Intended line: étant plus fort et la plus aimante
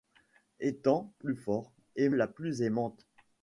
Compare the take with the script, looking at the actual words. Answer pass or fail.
pass